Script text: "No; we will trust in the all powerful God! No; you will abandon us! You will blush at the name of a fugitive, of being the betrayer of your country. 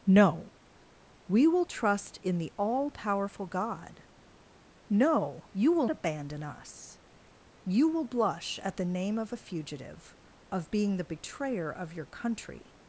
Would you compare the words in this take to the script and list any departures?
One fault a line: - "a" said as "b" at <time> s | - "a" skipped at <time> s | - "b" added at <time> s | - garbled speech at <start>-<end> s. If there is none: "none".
none